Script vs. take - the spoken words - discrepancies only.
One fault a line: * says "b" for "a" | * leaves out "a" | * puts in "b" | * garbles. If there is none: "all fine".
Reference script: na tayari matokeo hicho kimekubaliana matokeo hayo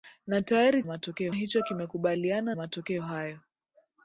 all fine